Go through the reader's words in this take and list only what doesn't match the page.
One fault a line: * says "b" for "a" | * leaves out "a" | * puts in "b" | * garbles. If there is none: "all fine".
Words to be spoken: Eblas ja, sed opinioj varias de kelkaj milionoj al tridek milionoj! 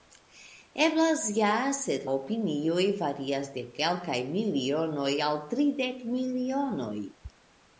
all fine